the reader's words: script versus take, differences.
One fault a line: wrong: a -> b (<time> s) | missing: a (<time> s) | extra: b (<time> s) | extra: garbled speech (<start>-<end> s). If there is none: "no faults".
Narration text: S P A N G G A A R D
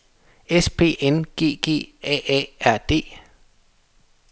missing: A (1.0 s)